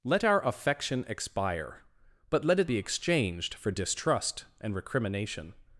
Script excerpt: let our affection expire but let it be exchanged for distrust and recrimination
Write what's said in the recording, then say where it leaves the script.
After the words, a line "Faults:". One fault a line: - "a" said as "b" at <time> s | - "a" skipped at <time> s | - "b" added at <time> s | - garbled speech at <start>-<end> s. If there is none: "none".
let our affection expire but let it be exchanged for distrust and recrimination
Faults:
none